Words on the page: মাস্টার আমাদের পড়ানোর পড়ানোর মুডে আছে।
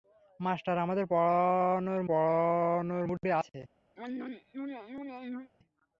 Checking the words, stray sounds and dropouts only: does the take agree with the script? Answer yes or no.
no